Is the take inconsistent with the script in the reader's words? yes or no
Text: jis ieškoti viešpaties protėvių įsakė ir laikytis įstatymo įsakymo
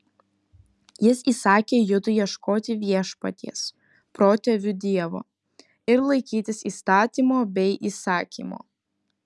yes